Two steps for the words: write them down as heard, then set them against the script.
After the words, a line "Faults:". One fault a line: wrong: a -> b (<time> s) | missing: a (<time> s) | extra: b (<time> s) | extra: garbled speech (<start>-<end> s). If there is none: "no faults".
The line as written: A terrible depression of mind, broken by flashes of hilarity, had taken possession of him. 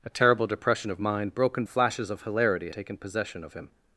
A terrible depression of mind, broken flashes of hilarity, taken possession of him.
Faults:
missing: by (1.6 s)
missing: had (2.7 s)